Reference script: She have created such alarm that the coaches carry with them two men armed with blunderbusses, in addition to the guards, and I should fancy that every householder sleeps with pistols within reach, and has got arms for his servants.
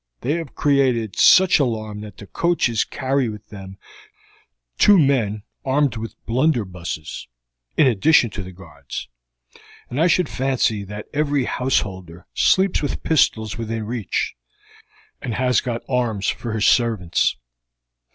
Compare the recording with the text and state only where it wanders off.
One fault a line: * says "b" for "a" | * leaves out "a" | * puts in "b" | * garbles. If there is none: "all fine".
* says "They" for "She"